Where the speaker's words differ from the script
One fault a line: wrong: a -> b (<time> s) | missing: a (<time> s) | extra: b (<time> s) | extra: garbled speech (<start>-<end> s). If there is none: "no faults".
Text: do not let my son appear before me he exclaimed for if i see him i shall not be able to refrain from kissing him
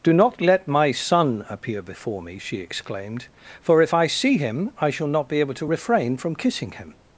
wrong: he -> she (2.4 s)